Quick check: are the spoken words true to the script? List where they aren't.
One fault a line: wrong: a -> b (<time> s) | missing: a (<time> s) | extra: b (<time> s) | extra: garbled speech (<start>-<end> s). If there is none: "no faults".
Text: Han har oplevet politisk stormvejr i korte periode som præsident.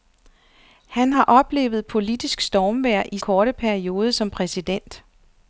no faults